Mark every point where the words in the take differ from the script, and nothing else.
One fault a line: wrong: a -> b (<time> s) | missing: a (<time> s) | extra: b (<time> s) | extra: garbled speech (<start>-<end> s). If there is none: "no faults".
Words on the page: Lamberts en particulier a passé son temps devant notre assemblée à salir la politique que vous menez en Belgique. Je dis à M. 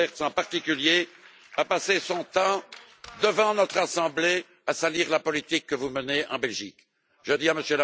no faults